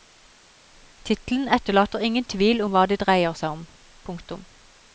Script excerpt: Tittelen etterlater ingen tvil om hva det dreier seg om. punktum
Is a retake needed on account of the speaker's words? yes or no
no